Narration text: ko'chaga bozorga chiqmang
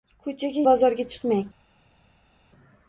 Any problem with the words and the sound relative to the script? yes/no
no